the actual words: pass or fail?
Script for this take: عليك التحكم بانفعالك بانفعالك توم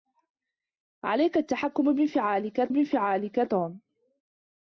pass